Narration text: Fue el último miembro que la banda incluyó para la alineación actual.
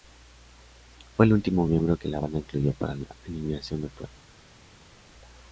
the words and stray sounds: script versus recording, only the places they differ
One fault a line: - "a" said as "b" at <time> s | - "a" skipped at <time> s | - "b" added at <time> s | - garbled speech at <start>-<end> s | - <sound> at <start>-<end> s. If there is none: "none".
none